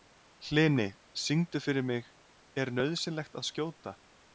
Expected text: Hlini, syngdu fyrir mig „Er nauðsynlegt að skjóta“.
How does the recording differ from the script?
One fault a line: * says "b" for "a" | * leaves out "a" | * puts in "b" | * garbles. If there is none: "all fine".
all fine